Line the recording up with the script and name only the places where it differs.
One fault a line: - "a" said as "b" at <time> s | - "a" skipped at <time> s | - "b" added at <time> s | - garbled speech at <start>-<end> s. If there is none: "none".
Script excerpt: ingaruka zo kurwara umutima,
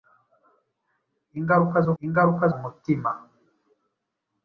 - "kurwara" said as "ingaruka" at 2.0 s